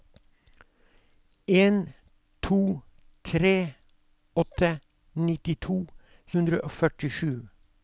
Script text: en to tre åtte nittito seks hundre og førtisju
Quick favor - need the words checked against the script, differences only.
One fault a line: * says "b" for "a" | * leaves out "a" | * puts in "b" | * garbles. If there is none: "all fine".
* leaves out "seks"